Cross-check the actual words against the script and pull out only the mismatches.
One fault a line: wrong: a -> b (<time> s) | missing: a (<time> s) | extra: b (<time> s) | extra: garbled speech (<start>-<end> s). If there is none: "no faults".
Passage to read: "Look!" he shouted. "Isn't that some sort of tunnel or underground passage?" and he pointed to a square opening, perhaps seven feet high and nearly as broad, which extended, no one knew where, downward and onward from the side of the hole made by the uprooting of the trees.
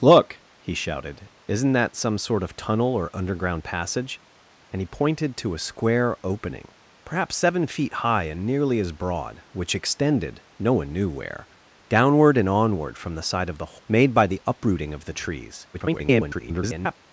missing: hole (13.8 s)
extra: garbled speech (15.7-17.0 s)